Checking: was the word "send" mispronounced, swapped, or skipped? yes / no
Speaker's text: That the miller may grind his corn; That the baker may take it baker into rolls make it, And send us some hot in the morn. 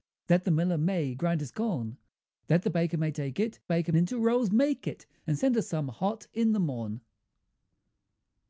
no